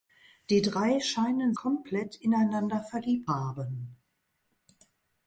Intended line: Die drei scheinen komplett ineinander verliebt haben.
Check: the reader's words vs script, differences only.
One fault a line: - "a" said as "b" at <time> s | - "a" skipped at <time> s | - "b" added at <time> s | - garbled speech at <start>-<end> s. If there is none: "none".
none